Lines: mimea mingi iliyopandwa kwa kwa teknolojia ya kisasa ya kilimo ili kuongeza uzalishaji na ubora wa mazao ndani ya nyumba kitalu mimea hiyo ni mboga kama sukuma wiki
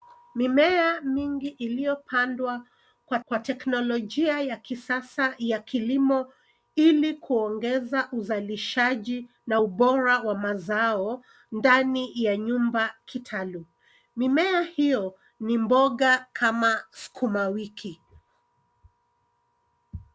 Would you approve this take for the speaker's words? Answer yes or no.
yes